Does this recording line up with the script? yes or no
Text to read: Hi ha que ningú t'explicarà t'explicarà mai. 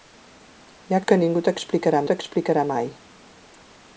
yes